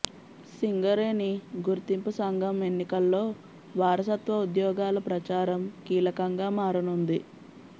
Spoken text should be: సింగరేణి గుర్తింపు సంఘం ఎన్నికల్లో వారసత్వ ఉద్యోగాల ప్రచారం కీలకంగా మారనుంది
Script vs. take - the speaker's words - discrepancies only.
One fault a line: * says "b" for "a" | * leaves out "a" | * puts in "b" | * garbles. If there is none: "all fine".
all fine